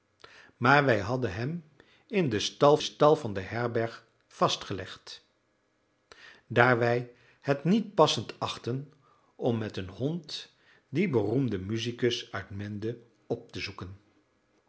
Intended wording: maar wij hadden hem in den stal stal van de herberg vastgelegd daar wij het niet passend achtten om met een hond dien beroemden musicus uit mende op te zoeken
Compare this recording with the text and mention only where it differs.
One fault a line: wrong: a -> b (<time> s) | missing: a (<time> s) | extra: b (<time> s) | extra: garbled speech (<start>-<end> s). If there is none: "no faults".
no faults